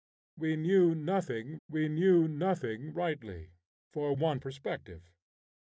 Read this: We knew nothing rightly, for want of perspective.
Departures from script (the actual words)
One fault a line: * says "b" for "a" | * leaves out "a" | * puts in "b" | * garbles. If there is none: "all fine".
* puts in "we knew nothing"
* leaves out "of"